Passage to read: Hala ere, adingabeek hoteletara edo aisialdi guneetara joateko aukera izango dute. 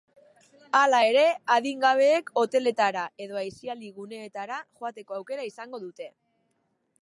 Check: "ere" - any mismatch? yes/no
no